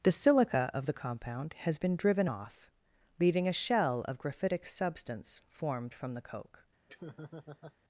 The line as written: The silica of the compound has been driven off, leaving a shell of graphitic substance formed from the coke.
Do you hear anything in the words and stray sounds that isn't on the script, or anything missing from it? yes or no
yes